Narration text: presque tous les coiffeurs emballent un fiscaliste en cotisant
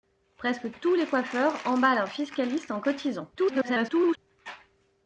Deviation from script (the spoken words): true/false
true